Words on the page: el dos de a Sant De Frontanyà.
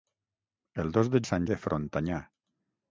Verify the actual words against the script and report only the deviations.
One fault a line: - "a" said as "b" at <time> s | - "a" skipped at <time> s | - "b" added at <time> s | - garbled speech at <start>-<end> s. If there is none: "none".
none